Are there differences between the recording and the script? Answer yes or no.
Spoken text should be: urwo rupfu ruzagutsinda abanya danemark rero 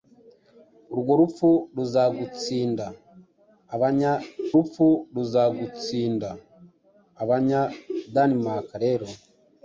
yes